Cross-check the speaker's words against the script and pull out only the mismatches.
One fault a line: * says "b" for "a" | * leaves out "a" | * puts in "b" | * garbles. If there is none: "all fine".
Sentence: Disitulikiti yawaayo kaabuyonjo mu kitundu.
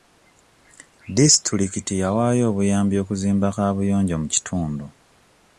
* puts in "obuyambi okuzimba"